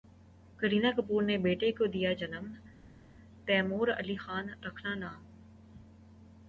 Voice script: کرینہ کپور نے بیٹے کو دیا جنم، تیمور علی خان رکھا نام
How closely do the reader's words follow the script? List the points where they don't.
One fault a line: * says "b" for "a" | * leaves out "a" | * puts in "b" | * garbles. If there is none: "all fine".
all fine